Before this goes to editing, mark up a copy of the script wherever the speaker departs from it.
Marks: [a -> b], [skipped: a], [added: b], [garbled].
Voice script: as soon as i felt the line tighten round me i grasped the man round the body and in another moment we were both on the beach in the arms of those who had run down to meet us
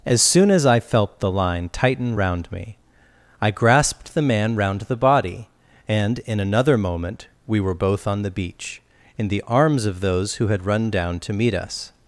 as soon as i felt the line tighten round me i grasped the man round the body and in another moment we were both on the beach in the arms of those who had run down to meet us